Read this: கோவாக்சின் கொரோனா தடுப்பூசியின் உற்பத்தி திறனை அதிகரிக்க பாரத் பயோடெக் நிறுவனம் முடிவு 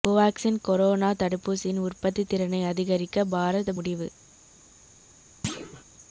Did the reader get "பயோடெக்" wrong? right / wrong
wrong